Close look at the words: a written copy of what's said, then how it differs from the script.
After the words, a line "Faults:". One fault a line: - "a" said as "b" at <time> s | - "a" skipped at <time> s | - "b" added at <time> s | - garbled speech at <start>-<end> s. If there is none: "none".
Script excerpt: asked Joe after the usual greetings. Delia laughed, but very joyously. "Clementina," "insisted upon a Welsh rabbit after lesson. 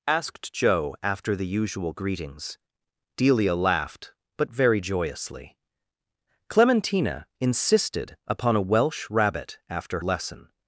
asked Joe after the usual greetings. Delia laughed, but very joyously. "Clementina," "insisted upon a Welsh rabbit after lesson.
Faults:
none